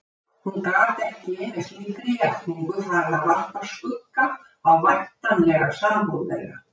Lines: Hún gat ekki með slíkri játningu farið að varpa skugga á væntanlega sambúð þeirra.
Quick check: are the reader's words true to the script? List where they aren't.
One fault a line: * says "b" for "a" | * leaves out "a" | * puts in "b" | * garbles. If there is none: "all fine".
all fine